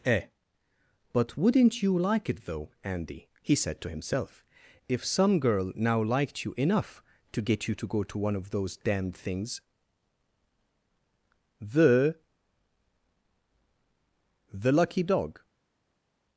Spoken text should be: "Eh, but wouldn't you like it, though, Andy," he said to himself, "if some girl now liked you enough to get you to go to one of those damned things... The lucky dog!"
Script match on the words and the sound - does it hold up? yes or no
no